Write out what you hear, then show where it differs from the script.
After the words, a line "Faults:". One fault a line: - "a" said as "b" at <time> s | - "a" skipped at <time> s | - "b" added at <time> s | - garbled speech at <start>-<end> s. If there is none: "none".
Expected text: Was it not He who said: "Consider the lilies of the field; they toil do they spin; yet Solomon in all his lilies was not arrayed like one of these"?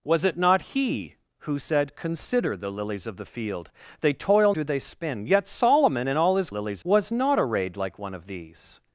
Was it not He who said: "Consider the lilies of the field; they toil do they spin; yet Solomon in all his lilies was not arrayed like one of these"?
Faults:
none